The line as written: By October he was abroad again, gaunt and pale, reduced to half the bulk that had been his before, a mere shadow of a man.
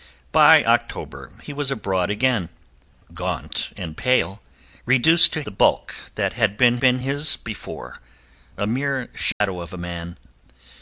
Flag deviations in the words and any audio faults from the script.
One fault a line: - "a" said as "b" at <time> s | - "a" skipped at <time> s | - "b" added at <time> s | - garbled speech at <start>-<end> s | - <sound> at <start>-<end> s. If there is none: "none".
- "half" skipped at 5.4 s
- "been" added at 6.8 s
- dropout at 9.3-9.4 s